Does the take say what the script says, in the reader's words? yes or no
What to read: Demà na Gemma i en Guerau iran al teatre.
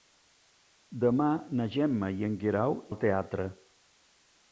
no